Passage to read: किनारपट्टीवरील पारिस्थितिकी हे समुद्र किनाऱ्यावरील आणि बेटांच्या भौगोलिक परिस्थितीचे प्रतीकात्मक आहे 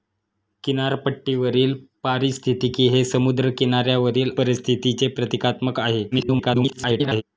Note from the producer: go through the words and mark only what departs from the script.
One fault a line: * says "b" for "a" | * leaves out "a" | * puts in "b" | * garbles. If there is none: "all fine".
* leaves out "आणि बेटांच्या भौगोलिक"
* garbles